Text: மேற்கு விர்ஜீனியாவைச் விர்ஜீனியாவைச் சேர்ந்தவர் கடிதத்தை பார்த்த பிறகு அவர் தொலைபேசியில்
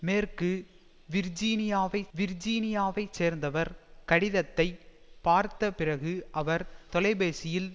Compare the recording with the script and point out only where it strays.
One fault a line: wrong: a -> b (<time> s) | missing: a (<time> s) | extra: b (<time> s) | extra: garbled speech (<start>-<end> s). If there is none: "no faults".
no faults